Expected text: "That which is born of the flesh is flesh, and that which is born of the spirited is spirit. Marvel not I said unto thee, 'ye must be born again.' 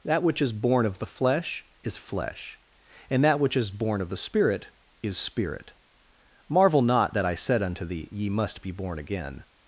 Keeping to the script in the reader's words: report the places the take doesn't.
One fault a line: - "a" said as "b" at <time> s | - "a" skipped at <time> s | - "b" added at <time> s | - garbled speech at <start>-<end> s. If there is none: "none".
- "spirited" said as "spirit" at 4.2 s
- "that" added at 7.1 s